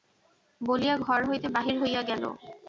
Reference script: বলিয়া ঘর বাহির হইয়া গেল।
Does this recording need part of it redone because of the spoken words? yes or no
yes